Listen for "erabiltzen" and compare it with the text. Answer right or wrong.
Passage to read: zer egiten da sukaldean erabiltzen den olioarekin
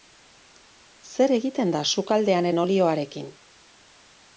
wrong